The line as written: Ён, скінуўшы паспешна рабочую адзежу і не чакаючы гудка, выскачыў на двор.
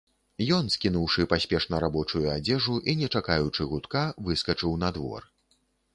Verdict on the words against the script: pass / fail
pass